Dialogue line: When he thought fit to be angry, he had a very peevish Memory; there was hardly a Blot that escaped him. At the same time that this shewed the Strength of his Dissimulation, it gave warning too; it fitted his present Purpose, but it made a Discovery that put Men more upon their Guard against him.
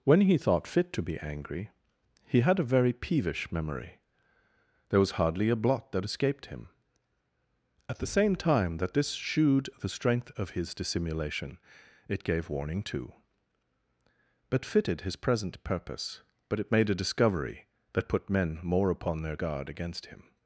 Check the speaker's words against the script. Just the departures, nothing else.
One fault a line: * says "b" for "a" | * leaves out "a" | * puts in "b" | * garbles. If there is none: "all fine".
* says "but" for "it"